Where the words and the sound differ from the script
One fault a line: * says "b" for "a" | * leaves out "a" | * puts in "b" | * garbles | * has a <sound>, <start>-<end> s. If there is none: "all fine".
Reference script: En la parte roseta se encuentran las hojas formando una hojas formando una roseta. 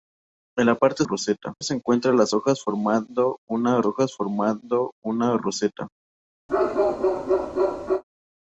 * has a bark, 6.5-8.0 s